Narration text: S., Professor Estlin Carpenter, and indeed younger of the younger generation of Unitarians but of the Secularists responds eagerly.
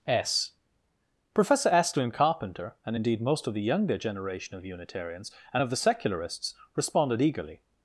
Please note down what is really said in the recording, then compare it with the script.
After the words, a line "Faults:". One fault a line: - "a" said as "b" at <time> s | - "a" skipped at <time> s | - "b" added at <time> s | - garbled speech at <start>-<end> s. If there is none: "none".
S., Professor Estlin Carpenter, and indeed most of the younger generation of Unitarians and of the Secularists responded eagerly.
Faults:
- "younger" said as "most" at 3.2 s
- "but" said as "and" at 5.5 s
- "responds" said as "responded" at 6.8 s